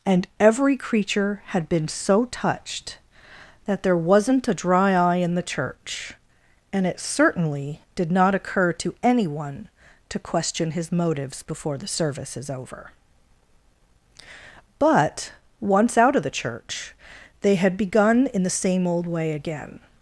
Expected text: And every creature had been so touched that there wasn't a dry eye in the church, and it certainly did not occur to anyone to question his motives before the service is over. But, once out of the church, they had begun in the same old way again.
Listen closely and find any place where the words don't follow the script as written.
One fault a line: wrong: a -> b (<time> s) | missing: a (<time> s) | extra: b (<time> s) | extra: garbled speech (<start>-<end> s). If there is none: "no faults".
no faults